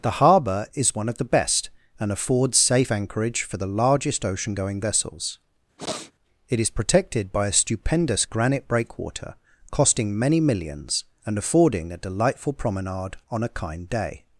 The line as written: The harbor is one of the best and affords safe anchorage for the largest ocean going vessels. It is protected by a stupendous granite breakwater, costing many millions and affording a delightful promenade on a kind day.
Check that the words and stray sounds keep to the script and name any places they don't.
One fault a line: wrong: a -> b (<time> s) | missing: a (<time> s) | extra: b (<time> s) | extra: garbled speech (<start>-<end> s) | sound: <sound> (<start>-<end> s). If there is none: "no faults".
sound: sniff (5.8-6.1 s)